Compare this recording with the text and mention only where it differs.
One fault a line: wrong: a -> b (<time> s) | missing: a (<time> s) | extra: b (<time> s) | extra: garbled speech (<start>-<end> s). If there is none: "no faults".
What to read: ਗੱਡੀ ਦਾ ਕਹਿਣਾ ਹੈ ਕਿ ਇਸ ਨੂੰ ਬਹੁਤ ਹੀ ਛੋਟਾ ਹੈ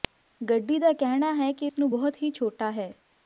no faults